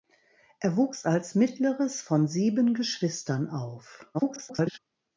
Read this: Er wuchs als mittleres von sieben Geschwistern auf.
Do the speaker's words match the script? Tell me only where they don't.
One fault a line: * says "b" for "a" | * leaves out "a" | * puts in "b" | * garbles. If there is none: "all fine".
* garbles